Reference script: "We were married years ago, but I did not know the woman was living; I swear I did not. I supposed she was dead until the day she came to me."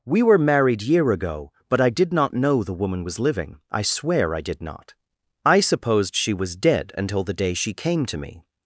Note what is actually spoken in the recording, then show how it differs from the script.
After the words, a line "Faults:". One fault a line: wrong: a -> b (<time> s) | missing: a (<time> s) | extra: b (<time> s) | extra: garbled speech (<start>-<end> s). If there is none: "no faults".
"We were married year ago, but I did not know the woman was living; I swear I did not. I supposed she was dead until the day she came to me."
Faults:
wrong: years -> year (0.8 s)